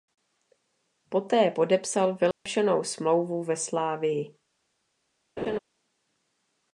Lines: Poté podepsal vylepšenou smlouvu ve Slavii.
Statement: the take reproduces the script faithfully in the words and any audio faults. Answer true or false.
false